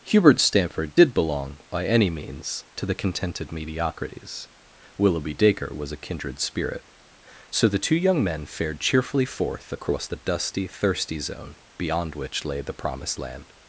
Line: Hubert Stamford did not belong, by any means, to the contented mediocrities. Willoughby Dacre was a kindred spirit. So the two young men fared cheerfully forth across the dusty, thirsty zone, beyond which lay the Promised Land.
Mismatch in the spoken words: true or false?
true